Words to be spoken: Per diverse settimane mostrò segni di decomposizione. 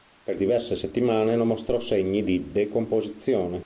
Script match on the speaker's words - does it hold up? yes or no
no